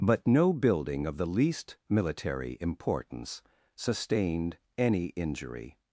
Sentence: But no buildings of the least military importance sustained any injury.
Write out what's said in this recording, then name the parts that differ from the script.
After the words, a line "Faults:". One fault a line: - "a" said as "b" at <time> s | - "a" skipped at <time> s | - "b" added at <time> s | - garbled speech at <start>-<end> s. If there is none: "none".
But no building of the least military importance sustained any injury.
Faults:
- "buildings" said as "building" at 0.5 s